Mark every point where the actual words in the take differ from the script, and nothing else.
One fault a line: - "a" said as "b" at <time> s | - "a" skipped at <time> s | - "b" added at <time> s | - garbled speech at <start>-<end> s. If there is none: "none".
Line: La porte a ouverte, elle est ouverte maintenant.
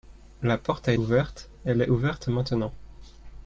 none